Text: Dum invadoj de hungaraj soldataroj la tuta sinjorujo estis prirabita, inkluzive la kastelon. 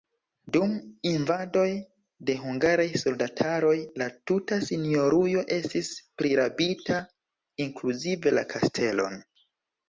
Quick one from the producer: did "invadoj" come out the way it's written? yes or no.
yes